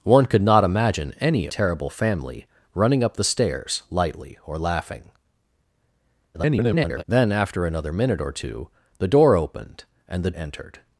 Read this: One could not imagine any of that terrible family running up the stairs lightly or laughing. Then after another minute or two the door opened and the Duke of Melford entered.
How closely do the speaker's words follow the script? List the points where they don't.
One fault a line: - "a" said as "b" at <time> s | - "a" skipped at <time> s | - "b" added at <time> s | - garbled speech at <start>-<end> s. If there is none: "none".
- "of that" skipped at 1.5 s
- garbled speech at 6.3-7.0 s
- "Duke of Melford" skipped at 10.3 s